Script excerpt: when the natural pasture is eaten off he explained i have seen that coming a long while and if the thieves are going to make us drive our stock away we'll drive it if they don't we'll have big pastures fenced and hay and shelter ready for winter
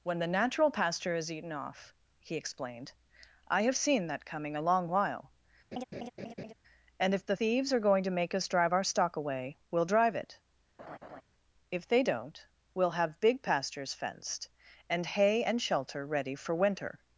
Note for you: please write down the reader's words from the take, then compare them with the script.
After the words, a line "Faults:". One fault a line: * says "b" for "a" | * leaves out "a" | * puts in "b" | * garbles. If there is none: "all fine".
when the natural pasture is eaten off he explained i have seen that coming a long while and if the thieves are going to make us drive our stock away we'll drive it if they don't we'll have big pastures fenced and hay and shelter ready for winter
Faults:
all fine